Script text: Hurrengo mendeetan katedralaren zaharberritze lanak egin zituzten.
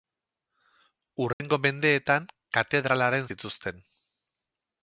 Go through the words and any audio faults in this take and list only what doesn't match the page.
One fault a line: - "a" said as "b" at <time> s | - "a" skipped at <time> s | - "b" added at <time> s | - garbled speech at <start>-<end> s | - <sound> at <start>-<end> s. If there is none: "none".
- dropout at 1.3-1.4 s
- "zaharberritze lanak egin" skipped at 3.3 s